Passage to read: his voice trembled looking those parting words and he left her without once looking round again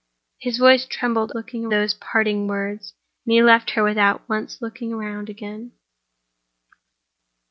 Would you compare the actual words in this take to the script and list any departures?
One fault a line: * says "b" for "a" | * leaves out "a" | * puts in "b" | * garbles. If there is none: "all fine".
all fine